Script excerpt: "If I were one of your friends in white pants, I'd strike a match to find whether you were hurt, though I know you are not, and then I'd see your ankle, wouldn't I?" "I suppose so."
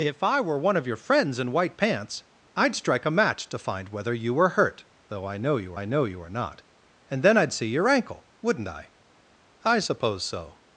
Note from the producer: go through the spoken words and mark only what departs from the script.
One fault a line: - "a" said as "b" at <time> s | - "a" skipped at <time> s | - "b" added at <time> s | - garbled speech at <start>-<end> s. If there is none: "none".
- "I know you" added at 5.7 s